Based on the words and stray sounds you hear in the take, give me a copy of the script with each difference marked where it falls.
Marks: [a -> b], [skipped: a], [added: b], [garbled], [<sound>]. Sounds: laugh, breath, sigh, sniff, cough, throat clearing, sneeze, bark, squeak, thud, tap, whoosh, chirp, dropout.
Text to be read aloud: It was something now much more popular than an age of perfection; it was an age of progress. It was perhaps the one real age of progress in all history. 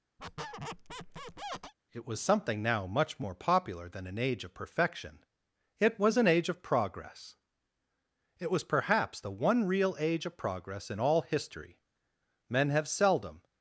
[squeak] It was something now much more popular than an age of perfection; it was an age of progress. It was perhaps the one real age of progress in all history. [added: Men have seldom]